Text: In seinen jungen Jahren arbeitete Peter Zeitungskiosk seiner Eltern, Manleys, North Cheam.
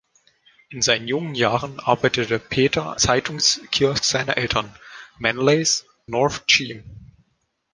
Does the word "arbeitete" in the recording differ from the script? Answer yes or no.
no